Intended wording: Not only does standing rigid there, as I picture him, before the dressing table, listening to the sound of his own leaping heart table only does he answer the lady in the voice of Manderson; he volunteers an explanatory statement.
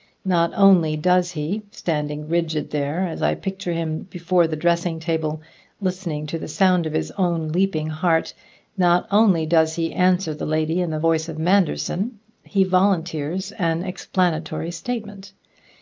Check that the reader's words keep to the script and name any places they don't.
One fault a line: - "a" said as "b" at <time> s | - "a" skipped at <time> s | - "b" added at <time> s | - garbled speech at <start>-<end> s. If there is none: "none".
- "he" added at 1.3 s
- "table" said as "not" at 8.8 s